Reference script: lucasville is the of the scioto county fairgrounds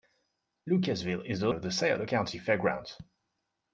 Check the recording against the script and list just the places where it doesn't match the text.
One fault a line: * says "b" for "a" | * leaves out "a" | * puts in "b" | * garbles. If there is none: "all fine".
all fine